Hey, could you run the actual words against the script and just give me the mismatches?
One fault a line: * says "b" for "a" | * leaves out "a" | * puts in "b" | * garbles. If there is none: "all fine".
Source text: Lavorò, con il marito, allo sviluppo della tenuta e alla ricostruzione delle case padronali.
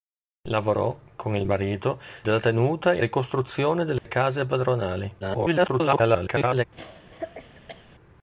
* leaves out "allo sviluppo"
* leaves out "alla"
* garbles